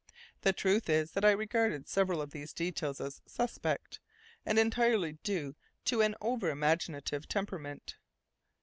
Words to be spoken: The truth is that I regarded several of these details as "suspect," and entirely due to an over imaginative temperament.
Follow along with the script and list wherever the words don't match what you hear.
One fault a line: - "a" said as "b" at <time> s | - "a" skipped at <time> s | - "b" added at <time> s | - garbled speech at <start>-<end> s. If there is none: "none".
none